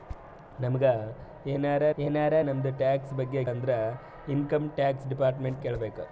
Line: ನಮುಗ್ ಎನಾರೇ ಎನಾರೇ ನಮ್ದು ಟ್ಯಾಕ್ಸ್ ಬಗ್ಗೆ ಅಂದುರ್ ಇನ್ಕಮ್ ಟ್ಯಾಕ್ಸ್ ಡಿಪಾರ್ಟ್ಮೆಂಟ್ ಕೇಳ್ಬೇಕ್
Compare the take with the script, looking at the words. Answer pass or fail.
pass